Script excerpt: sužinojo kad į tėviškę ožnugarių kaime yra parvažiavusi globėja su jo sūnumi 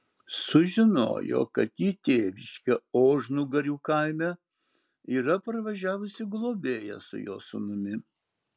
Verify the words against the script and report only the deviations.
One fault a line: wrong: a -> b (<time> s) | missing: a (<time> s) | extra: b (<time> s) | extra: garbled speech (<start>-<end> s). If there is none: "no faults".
no faults